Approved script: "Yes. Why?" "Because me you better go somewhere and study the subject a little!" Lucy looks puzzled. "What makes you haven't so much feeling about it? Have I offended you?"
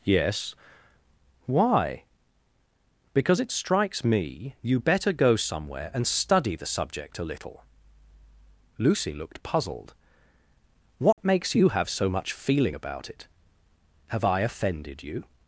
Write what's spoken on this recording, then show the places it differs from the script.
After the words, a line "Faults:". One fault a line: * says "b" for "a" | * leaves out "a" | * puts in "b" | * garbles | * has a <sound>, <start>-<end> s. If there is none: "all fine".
"Yes. Why?" "Because it strikes me you better go somewhere and study the subject a little!" Lucy looked puzzled. "What makes you have so much feeling about it? Have I offended you?"
Faults:
* puts in "it strikes"
* says "looked" for "looks"
* has a dropout, 11.1-11.2 s
* says "have" for "haven't"